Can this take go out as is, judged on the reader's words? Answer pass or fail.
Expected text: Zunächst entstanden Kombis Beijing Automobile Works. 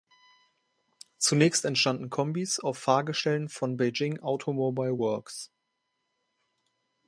fail